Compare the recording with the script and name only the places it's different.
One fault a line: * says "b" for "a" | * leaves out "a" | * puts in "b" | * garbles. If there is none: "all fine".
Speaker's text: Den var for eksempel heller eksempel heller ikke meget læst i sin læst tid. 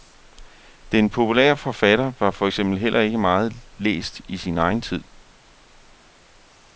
* puts in "populære forfatter"
* leaves out "eksempel heller"
* says "egen" for "læst"